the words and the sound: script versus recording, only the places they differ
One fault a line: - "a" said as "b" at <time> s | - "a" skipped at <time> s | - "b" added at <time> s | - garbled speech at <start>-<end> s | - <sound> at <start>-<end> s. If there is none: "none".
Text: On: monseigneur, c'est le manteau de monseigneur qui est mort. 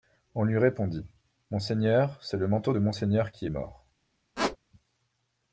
- "lui répondit" added at 0.5 s
- squeak at 4.4-4.6 s